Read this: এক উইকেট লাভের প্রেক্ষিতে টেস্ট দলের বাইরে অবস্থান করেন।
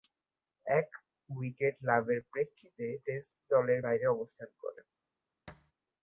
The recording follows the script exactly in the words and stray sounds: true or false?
false